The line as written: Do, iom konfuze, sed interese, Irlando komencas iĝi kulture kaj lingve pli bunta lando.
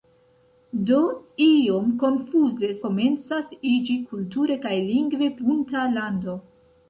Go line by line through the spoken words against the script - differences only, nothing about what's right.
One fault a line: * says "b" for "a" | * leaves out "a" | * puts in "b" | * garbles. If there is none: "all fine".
* leaves out "sed interese Irlando"
* leaves out "pli"